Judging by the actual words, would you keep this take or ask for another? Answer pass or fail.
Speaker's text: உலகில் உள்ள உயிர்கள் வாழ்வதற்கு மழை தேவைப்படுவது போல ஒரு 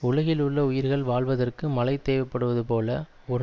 pass